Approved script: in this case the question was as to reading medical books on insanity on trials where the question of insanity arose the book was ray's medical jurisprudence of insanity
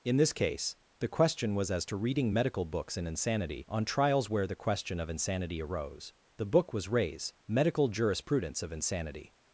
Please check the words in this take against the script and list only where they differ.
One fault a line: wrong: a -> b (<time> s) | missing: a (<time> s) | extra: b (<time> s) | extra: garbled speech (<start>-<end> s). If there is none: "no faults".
wrong: on -> in (3.0 s)